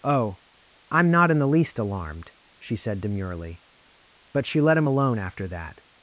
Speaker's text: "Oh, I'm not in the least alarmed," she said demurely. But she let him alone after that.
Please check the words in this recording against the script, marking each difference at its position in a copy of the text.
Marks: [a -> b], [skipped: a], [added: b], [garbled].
"Oh, I'm not in the least alarmed," she said demurely. But she let him alone after that.